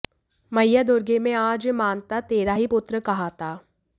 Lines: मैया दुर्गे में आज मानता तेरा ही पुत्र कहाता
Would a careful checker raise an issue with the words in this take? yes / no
no